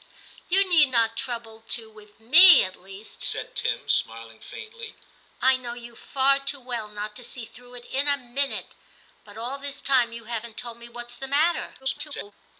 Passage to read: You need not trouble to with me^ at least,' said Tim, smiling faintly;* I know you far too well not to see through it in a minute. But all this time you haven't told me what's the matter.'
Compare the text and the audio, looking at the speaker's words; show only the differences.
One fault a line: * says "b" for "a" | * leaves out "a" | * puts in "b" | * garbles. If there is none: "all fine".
* garbles